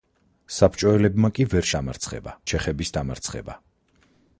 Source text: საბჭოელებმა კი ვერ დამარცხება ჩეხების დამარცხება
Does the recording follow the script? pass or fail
pass